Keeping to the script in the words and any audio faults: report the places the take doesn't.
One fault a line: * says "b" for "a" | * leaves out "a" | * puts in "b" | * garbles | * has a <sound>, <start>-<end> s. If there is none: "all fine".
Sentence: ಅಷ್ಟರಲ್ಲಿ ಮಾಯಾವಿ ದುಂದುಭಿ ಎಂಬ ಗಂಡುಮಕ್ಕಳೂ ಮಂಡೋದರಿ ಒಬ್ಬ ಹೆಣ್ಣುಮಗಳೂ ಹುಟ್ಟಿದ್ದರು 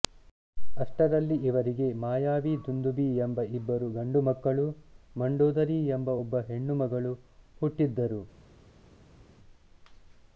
* puts in "ಇವರಿಗೆ"
* puts in "ಇಬ್ಬರು"
* puts in "ಎಂಬ"